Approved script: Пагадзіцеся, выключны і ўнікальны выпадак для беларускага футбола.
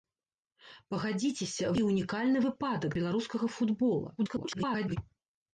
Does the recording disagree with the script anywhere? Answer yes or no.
yes